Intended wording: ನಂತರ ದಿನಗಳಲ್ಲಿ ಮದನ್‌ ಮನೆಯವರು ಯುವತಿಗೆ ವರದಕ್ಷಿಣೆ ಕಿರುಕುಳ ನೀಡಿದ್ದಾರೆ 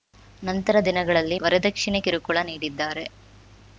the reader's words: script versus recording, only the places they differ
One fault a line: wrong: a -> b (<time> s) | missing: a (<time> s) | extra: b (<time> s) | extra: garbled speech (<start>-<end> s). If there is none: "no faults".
missing: ಮದನ್ ಮನೆಯವರು ಯುವತಿಗೆ (1.4 s)